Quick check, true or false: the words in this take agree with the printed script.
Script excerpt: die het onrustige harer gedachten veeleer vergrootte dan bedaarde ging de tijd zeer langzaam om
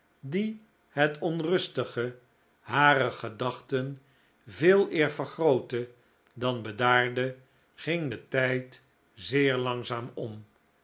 true